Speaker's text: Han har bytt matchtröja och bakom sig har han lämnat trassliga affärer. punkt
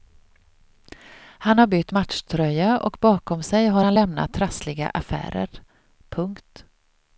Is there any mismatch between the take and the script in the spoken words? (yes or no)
no